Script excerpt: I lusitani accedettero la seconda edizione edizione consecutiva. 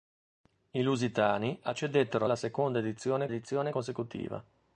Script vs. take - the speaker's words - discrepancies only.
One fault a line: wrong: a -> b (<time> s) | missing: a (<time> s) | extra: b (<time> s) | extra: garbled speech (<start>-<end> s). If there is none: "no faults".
no faults